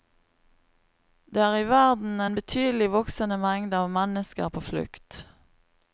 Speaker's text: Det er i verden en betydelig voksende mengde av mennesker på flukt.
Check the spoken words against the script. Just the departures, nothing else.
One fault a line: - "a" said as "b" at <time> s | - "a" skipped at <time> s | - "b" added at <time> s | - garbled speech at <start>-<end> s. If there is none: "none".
none